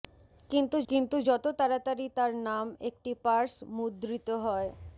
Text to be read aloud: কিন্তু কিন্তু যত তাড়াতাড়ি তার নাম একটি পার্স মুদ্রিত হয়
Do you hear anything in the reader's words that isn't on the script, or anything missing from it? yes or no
no